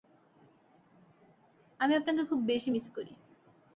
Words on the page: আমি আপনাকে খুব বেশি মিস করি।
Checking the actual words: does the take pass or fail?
pass